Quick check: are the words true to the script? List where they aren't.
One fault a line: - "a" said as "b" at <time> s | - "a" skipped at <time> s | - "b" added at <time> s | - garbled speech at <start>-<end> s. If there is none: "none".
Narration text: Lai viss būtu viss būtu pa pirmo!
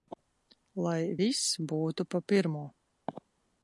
- "viss būtu" skipped at 2.1 s